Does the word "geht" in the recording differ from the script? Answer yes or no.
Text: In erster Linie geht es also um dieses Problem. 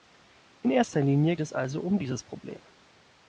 yes